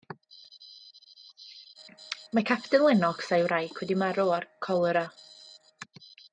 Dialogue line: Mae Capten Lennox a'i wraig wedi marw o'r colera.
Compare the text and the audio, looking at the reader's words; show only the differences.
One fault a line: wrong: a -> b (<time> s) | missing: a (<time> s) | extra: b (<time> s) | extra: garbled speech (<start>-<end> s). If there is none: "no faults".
no faults